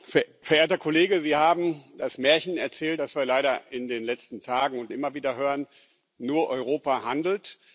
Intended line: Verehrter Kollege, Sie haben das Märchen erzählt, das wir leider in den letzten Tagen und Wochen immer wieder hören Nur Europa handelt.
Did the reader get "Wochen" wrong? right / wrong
wrong